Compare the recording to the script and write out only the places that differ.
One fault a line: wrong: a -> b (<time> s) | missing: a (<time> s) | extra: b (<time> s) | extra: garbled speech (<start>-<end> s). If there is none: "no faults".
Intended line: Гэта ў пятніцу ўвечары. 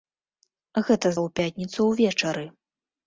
no faults